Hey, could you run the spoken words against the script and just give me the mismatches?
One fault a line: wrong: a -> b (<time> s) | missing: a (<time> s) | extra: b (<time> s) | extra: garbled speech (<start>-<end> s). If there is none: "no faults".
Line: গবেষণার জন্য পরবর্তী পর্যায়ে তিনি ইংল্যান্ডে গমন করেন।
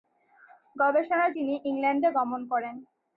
missing: জন্য পরবর্তী পর্যায়ে (1.3 s)